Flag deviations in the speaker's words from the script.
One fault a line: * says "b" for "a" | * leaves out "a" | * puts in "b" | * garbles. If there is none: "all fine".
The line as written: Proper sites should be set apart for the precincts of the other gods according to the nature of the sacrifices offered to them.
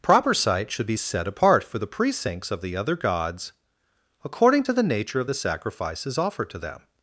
all fine